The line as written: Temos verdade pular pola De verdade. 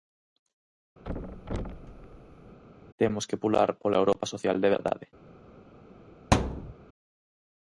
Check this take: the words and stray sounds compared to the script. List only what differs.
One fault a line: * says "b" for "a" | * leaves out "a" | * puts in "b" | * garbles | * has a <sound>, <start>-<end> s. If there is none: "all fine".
* has a thud, 1.0-2.6 s
* says "que" for "verdade"
* puts in "Europa social"
* has a thud, 6.3-6.7 s